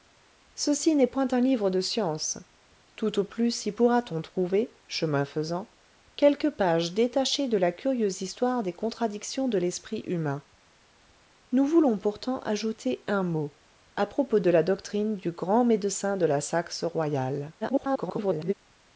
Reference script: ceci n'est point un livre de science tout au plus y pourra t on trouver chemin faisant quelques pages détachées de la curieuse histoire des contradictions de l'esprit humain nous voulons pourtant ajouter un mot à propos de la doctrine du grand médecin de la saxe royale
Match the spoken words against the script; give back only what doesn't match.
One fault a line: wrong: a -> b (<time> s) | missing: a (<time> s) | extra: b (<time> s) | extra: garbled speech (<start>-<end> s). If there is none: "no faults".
extra: garbled speech (17.6-18.5 s)